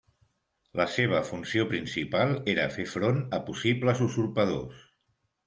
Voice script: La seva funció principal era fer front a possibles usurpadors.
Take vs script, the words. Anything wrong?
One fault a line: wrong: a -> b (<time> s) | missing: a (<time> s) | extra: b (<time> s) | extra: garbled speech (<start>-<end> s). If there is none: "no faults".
no faults